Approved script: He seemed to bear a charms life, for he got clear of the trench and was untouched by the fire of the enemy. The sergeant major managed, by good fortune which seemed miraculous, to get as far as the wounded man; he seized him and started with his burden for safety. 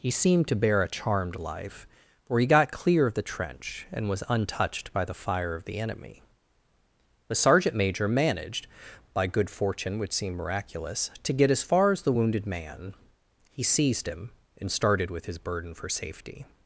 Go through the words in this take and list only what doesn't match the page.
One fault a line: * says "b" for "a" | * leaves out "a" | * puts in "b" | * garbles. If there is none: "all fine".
* says "charmed" for "charms"